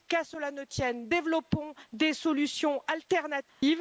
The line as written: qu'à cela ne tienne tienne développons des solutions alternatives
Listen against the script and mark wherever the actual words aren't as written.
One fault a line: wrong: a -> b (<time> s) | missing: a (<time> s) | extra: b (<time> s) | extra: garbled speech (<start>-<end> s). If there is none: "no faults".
missing: tienne (1.1 s)